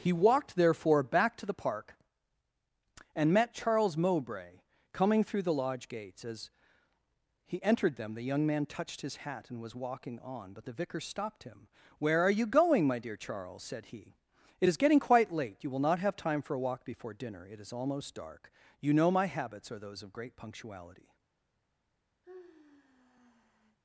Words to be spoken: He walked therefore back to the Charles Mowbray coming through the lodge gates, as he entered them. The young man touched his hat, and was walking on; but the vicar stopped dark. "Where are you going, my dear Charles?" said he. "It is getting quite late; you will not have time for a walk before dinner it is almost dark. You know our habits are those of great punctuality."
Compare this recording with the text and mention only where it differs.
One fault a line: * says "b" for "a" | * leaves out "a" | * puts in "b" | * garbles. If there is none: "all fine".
* puts in "Park and met"
* says "him" for "dark"
* says "my" for "our"